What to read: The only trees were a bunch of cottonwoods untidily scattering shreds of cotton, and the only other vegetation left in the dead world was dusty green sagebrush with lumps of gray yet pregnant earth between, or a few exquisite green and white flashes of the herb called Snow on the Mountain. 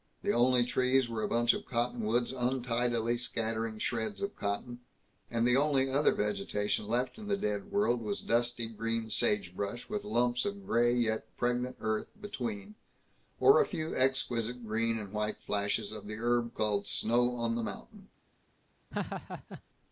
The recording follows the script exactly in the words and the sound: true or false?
false